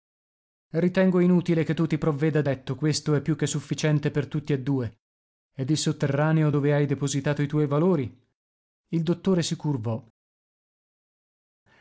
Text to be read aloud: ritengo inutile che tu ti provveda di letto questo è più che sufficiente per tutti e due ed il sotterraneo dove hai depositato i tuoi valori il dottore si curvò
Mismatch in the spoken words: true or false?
false